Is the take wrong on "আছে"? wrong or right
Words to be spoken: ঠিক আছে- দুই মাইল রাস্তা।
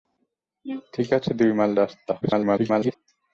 right